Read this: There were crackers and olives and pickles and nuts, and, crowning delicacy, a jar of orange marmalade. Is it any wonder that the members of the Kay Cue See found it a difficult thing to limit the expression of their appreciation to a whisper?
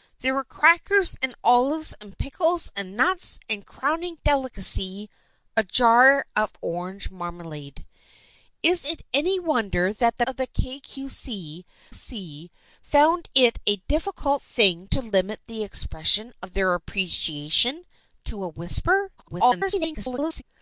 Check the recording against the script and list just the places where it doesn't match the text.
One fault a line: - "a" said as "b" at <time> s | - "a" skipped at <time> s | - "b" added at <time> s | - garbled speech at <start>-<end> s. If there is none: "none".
- "members" skipped at 10.2 s
- "See" added at 11.9 s
- garbled speech at 19.2-20.4 s